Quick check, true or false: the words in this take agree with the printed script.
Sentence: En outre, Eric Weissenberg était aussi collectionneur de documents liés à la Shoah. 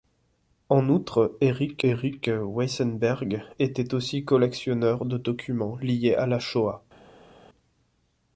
false